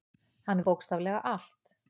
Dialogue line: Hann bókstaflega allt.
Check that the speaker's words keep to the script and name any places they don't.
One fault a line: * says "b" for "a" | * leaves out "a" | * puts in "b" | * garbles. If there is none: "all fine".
all fine